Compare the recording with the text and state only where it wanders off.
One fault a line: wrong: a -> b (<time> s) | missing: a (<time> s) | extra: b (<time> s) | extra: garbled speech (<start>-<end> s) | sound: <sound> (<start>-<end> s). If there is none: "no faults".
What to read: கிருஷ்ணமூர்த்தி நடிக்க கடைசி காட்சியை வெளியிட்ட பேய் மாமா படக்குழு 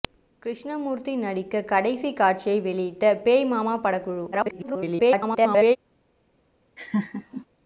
extra: garbled speech (4.3-5.8 s)
sound: laugh (6.8-7.5 s)